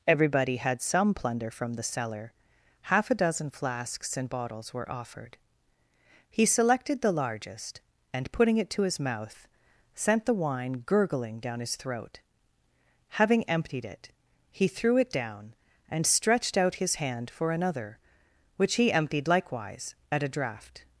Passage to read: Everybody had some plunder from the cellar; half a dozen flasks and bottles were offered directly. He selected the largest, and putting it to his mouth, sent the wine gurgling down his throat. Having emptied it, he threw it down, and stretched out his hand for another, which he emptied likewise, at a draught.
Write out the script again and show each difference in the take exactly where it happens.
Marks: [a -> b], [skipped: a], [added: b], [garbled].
Everybody had some plunder from the cellar; half a dozen flasks and bottles were offered [skipped: directly.] He selected the largest, and putting it to his mouth, sent the wine gurgling down his throat. Having emptied it, he threw it down, and stretched out his hand for another, which he emptied likewise, at a draught.